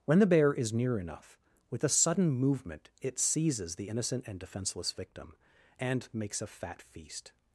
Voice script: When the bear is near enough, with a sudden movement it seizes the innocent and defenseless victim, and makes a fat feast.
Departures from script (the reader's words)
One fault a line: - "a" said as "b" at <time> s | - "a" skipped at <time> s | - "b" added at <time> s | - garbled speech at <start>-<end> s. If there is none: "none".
none